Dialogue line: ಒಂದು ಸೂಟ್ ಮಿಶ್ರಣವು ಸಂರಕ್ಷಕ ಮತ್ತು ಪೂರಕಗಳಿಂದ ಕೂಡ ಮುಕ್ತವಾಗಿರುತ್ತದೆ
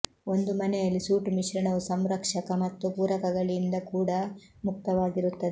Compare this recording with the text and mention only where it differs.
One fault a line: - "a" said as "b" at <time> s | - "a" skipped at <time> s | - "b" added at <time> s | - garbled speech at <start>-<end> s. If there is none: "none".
- "ಮನೆಯಲ್ಲಿ" added at 0.5 s